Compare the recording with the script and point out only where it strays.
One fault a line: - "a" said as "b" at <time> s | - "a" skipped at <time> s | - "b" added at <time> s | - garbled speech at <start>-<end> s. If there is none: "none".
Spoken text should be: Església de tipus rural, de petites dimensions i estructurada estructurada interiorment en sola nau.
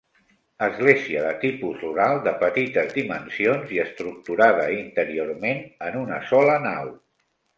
- "estructurada" skipped at 4.7 s
- "una" added at 6.1 s